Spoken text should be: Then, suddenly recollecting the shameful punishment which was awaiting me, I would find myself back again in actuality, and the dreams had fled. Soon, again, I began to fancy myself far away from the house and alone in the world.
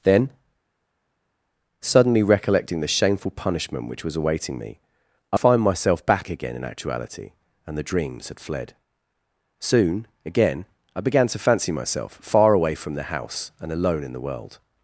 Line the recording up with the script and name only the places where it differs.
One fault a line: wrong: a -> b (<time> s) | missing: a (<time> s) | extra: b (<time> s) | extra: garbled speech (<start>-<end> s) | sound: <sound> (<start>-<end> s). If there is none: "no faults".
missing: would (5.4 s)